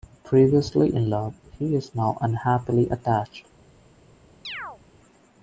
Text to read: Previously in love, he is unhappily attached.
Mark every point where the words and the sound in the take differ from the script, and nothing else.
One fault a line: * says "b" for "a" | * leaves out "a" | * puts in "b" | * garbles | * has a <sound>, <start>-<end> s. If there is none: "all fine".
* puts in "now"
* has a chirp, 4.4-4.8 s